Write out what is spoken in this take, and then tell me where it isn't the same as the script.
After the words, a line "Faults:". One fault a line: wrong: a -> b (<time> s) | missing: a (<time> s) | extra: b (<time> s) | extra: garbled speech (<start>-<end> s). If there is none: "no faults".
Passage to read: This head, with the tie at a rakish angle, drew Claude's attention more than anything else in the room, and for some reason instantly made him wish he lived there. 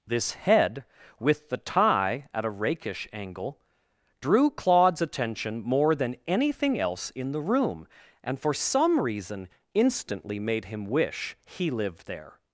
This head, with the tie at a rakish angle, drew Claude's attention more than anything else in the room, and for some reason instantly made him wish he lived there.
Faults:
no faults